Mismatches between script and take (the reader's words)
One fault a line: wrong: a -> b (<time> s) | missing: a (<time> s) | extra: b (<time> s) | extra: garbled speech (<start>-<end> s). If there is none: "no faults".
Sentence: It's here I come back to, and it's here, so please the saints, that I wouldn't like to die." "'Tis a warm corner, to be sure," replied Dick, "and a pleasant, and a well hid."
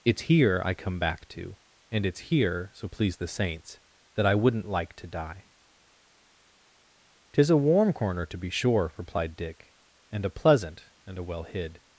no faults